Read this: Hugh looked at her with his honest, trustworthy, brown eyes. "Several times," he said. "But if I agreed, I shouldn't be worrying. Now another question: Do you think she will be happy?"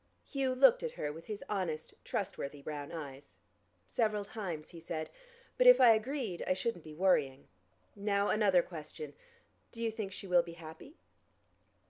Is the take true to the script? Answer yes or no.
yes